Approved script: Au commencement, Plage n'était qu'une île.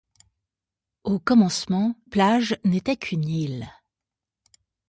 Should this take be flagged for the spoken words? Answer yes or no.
no